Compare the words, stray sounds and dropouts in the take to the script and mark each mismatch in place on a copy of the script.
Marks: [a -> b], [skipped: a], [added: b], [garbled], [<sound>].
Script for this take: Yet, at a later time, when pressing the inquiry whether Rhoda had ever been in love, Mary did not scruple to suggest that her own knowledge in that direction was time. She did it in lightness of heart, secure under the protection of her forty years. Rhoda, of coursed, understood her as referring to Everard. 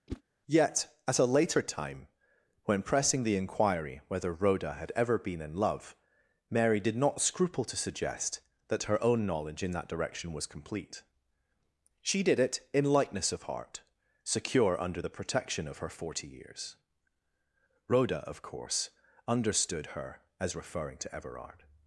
[whoosh] Yet, at a later time, when pressing the inquiry whether Rhoda had ever been in love, Mary did not scruple to suggest that her own knowledge in that direction was [time. -> complete] She did it in lightness of heart, secure under the protection of her forty years. Rhoda, of [coursed, -> course] understood her as referring to Everard.